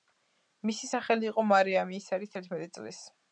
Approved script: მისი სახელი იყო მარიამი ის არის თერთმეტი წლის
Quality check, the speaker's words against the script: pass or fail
pass